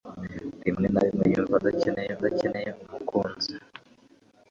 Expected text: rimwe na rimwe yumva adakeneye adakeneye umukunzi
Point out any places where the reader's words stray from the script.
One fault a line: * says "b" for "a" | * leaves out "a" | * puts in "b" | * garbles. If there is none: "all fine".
all fine